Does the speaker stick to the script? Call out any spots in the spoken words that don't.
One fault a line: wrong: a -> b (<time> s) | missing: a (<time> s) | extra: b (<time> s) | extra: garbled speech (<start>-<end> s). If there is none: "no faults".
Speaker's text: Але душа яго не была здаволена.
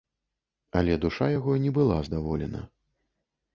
no faults